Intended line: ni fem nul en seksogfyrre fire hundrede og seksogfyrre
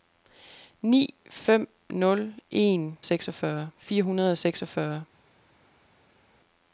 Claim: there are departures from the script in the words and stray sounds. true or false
false